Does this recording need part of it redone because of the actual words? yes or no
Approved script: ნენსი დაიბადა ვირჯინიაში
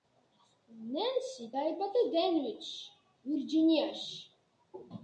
yes